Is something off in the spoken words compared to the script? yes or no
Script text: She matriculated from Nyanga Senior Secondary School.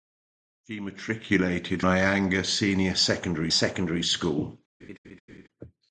yes